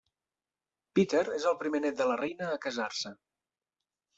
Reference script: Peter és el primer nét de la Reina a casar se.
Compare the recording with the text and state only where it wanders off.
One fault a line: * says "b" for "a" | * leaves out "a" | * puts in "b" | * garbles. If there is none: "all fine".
all fine